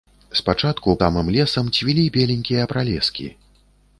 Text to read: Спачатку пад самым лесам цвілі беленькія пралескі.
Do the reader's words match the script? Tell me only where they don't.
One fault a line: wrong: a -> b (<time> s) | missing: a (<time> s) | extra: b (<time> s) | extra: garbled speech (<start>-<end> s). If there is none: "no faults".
missing: пад (0.9 s)